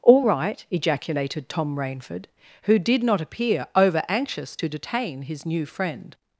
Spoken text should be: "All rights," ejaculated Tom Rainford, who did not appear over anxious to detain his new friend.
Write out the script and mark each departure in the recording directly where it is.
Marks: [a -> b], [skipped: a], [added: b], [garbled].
"All [rights," -> right] ejaculated Tom Rainford, who did not appear over anxious to detain his new friend.